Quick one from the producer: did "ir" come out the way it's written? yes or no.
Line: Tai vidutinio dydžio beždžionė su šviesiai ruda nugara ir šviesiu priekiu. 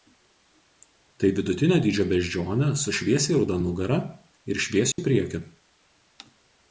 yes